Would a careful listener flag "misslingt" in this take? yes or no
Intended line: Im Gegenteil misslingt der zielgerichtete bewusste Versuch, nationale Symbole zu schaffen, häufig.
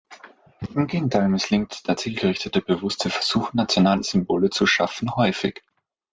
no